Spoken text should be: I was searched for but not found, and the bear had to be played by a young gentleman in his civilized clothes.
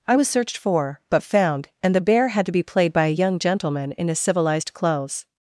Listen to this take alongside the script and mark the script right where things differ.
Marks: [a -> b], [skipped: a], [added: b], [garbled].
I was searched for but [skipped: not] found, and the bear had to be played by a young gentleman in his civilized clothes.